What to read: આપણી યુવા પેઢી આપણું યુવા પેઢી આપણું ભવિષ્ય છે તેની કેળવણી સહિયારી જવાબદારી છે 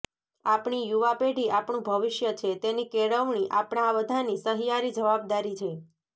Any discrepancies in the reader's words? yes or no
yes